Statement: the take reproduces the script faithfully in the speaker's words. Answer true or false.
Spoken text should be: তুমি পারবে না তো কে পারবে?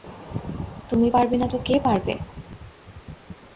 true